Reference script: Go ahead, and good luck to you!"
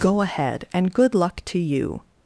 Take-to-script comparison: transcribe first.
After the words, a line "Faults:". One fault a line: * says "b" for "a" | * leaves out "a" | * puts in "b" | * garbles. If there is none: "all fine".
Go ahead, and good luck to you!"
Faults:
all fine